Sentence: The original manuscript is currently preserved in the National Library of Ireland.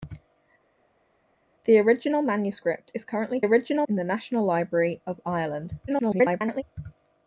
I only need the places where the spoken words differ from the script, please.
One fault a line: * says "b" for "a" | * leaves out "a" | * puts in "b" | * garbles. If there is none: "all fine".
* says "original" for "preserved"
* garbles